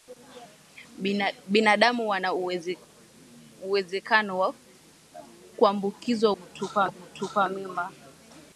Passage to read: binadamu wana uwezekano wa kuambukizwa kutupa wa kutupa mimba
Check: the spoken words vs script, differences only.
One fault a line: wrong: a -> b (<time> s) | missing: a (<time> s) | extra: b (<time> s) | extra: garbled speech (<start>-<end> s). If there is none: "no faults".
no faults